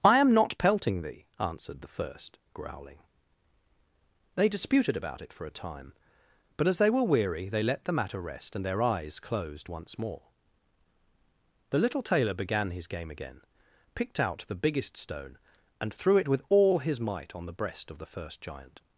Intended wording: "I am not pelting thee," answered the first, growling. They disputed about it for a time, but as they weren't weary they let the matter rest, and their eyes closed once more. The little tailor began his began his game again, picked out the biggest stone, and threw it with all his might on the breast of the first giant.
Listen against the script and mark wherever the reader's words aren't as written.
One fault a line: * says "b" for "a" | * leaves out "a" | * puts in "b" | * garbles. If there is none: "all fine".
* says "were" for "weren't"
* leaves out "began his"